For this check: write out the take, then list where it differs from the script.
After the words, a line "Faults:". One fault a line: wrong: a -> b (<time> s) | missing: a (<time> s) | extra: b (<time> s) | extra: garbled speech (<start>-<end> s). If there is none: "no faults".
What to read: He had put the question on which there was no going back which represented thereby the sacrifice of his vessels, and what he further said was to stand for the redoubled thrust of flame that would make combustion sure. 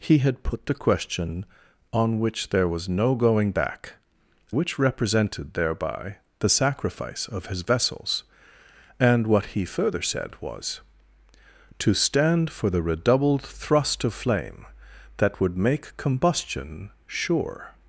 He had put the question on which there was no going back which represented thereby the sacrifice of his vessels, and what he further said was to stand for the redoubled thrust of flame that would make combustion sure.
Faults:
no faults